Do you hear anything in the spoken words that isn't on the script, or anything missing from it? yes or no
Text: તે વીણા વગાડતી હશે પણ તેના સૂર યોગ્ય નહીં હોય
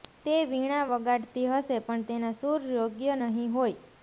no